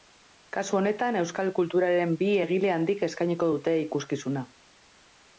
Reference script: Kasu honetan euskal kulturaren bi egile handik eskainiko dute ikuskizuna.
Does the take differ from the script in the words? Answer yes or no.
no